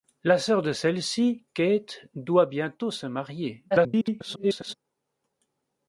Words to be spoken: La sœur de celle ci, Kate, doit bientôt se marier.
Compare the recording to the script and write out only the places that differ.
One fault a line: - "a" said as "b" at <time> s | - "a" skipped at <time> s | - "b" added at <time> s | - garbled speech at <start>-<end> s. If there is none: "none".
- garbled speech at 3.7-4.7 s